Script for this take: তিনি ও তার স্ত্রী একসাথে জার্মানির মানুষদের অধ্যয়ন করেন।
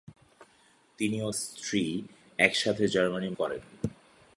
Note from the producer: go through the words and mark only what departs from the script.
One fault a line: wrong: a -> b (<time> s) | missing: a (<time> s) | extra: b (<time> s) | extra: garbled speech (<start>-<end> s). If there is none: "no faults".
missing: তার (1.3 s)
missing: মানুষদের অধ্যয়ন (3.4 s)